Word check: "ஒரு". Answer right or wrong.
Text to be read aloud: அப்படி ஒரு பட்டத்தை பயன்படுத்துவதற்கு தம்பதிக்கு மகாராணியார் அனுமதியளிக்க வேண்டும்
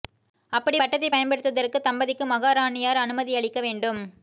wrong